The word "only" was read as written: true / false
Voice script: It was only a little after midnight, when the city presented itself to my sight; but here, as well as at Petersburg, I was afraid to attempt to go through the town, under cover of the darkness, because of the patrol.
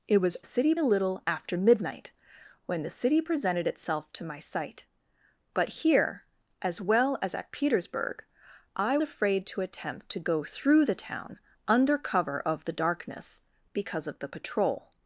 false